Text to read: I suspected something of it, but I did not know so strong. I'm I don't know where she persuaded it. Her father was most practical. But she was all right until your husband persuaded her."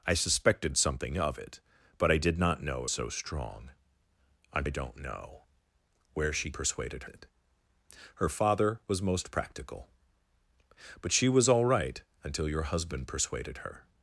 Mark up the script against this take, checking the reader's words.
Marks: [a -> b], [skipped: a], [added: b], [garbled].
I suspected something of it, but I did not know so strong. I'm I don't know where she persuaded it. Her father was most practical. But she was all right until your husband persuaded her."